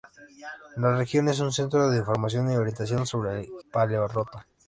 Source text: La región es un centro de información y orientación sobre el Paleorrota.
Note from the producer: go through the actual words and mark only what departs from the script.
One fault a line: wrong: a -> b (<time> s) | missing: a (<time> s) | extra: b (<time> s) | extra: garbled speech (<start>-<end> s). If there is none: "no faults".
no faults